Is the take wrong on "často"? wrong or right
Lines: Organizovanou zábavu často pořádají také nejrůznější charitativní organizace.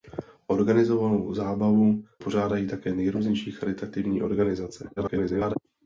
wrong